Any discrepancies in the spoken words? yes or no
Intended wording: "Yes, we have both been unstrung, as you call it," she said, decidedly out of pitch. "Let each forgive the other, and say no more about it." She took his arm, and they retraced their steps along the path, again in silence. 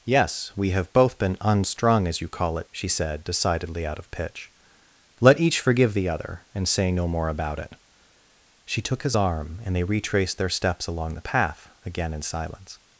no